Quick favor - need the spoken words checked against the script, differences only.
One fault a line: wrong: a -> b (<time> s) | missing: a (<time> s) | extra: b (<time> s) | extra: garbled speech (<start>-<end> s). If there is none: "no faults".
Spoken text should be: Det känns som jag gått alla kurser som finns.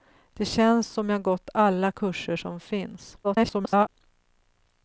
extra: garbled speech (3.2-3.9 s)